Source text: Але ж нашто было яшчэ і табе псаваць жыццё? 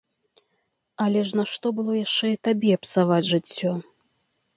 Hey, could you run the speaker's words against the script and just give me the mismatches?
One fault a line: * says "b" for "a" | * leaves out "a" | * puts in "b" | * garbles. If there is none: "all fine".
all fine